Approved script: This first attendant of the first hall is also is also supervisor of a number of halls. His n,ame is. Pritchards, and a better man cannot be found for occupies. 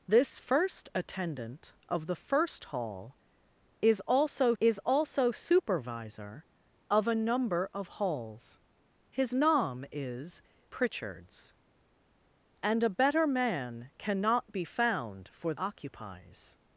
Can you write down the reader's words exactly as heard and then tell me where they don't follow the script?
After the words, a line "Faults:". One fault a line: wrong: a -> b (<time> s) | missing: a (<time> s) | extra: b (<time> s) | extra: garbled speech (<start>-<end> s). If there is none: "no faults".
This first attendant of the first hall is also is also supervisor of a number of halls. His n,ame is. Pritchards, and a better man cannot be found for occupies.
Faults:
no faults